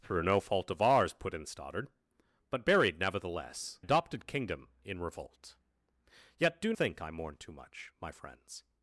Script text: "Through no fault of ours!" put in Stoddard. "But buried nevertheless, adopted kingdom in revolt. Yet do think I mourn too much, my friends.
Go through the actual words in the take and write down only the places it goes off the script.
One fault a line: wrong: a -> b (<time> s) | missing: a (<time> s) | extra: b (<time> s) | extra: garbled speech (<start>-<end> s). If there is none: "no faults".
no faults